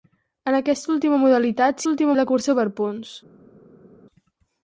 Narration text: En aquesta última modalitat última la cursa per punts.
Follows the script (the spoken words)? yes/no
yes